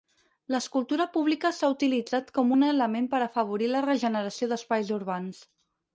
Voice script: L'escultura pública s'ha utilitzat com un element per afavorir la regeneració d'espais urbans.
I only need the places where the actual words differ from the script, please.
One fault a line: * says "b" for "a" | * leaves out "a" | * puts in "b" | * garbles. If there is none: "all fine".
all fine